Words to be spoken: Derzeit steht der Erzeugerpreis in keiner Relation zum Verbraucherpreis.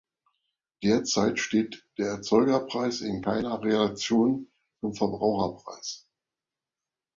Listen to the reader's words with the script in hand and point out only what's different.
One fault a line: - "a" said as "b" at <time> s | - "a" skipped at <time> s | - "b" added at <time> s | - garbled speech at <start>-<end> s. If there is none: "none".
none